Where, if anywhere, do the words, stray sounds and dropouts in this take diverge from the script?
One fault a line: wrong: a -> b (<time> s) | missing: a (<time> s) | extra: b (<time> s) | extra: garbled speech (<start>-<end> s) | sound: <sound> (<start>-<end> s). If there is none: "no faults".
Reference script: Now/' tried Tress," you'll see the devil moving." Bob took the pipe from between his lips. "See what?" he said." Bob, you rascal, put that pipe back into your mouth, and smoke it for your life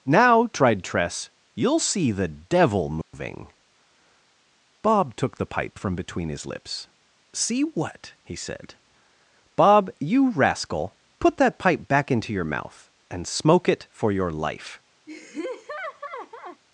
sound: dropout (3.0-3.1 s)
sound: laugh (15.1-16.6 s)